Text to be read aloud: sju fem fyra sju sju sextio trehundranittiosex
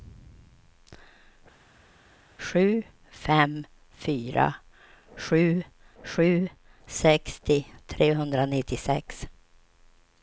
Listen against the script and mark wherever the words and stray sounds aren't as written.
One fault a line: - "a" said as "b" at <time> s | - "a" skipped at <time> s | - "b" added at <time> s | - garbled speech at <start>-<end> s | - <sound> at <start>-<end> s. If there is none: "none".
none